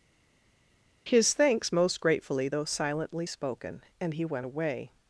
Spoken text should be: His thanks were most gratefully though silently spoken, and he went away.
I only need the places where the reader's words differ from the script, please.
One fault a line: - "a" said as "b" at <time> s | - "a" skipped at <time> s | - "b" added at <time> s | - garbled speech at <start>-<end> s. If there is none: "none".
- "were" skipped at 1.7 s